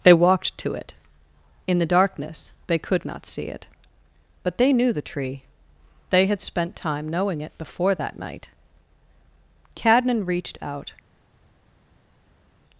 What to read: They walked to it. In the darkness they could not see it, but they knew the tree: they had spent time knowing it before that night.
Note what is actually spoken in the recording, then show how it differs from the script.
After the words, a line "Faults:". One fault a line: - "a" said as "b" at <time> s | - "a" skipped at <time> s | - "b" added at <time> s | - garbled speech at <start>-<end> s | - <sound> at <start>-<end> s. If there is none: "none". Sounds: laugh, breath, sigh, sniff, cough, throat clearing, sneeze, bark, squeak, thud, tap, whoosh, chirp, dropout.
They walked to it. In the darkness they could not see it, but they knew the tree: they had spent time knowing it before that night. Cadnan reached out
Faults:
- "Cadnan reached out" added at 9.8 s